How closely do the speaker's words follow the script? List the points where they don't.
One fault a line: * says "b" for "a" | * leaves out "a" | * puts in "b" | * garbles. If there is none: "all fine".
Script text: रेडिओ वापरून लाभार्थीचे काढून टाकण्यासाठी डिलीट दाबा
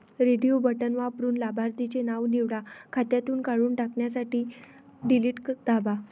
* puts in "बटण"
* puts in "नाव निवडा खात्यातून"